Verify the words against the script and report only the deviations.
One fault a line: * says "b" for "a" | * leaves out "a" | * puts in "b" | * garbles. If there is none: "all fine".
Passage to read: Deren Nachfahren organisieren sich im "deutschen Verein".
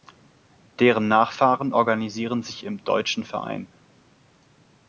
all fine